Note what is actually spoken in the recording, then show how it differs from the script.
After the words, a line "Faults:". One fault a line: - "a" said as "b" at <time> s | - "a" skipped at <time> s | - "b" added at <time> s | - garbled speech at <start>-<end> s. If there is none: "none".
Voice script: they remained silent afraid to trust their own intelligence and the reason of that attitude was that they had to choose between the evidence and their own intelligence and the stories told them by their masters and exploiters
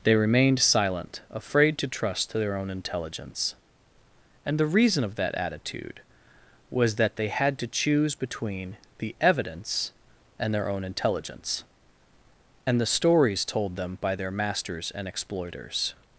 they remained silent afraid to trust their own intelligence and the reason of that attitude was that they had to choose between the evidence and their own intelligence and the stories told them by their masters and exploiters
Faults:
none